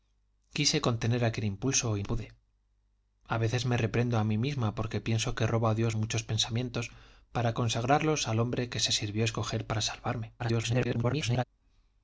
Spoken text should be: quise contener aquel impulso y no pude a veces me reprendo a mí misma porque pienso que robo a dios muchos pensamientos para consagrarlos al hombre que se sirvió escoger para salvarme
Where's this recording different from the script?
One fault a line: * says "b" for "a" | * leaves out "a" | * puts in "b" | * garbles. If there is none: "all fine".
* leaves out "no"
* garbles